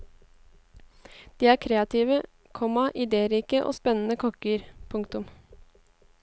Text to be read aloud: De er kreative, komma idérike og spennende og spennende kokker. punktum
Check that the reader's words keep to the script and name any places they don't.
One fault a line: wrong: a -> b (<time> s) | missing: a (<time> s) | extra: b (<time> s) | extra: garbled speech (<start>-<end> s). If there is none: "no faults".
missing: og spennende (4.2 s)